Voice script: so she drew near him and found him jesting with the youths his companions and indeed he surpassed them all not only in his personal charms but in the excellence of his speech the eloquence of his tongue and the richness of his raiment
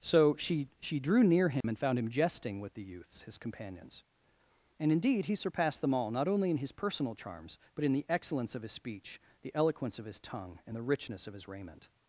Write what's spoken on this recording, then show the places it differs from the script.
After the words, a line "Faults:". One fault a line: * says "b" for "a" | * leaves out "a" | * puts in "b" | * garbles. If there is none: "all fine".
so she she drew near him and found him jesting with the youths his companions and indeed he surpassed them all not only in his personal charms but in the excellence of his speech the eloquence of his tongue and the richness of his raiment
Faults:
* puts in "she"